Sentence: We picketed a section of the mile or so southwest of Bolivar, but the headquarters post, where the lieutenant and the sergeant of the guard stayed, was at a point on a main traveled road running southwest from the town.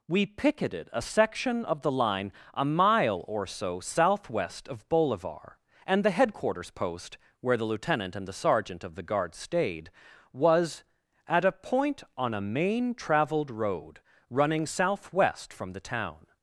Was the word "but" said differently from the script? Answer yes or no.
yes